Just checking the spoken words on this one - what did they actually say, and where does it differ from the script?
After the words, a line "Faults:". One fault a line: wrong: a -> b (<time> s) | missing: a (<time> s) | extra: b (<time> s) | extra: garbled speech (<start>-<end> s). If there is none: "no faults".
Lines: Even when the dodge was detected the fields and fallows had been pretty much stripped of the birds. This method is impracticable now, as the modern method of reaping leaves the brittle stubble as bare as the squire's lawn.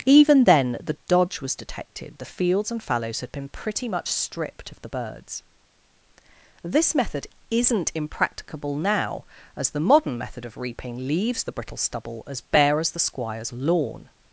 Even then the dodge was detected the fields and fallows had been pretty much stripped of the birds. This method isn't impracticable now, as the modern method of reaping leaves the brittle stubble as bare as the squire's lawn.
Faults:
wrong: when -> then (0.5 s)
wrong: is -> isn't (7.5 s)